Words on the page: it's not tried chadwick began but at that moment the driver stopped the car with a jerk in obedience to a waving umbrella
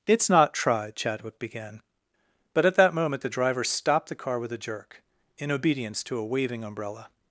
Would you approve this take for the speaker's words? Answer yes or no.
yes